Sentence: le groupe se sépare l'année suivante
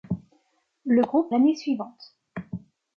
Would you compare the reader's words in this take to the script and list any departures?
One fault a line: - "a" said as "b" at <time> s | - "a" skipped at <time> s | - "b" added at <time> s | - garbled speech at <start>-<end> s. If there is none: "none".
- "se sépare" skipped at 1.3 s